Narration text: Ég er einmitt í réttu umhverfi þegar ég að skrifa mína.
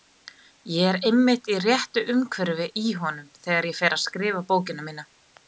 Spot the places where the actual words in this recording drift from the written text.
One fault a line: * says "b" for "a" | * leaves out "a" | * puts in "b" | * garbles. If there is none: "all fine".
* puts in "í honum"
* puts in "fer"
* puts in "bókina"